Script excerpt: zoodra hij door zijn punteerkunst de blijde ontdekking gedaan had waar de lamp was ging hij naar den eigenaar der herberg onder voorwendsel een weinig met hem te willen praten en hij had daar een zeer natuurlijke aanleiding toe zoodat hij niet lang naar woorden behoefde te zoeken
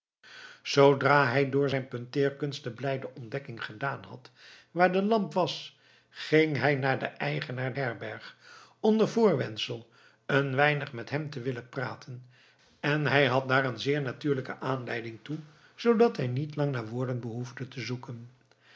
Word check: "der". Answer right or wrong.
wrong